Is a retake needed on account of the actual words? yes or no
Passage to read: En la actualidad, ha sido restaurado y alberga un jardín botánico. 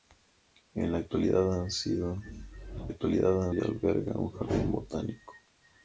yes